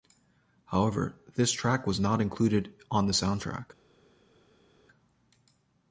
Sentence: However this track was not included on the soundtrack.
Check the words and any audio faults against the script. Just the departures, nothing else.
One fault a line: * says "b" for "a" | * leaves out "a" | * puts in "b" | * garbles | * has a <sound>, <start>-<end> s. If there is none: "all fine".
all fine